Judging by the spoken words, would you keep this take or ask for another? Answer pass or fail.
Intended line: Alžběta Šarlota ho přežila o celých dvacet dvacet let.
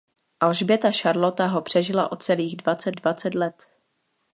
pass